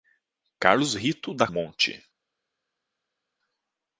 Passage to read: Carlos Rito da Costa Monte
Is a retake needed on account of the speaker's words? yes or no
yes